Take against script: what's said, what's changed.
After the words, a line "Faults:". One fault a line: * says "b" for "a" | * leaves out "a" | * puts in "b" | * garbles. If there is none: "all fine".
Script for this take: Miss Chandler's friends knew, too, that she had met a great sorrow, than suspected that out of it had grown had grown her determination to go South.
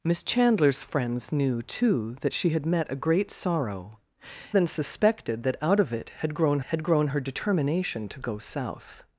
Miss Chandler's friends knew, too, that she had met a great sorrow, than suspected that out of it had grown had grown her determination to go South.
Faults:
all fine